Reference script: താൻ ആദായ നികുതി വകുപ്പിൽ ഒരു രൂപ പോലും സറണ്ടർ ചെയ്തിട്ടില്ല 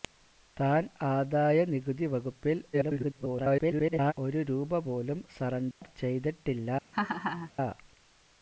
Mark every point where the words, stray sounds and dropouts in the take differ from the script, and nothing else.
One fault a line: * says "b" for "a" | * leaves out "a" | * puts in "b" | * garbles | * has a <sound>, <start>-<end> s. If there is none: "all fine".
* garbles
* has a dropout, 5.7-5.8 s
* has a laugh, 6.9-7.5 s